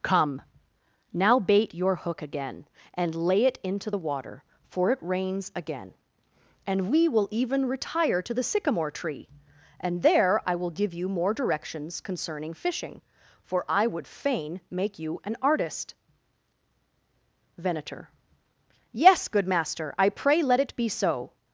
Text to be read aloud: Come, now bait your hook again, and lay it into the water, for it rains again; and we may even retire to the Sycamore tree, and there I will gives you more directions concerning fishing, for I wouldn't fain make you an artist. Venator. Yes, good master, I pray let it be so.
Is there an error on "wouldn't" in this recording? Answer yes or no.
yes